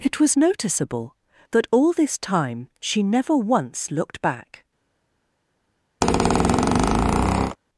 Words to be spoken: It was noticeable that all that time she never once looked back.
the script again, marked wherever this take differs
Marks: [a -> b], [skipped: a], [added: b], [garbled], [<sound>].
It was noticeable that all [that -> this] time she never once looked back. [squeak]